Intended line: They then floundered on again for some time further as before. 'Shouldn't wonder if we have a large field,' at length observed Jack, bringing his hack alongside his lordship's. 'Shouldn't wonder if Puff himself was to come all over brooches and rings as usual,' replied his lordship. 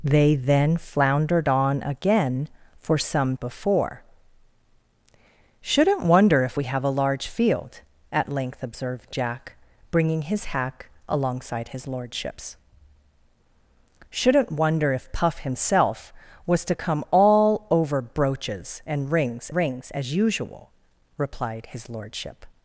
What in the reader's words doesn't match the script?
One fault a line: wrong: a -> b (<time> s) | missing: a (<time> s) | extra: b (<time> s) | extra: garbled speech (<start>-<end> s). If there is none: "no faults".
missing: time further as (3.4 s)
extra: rings (19.5 s)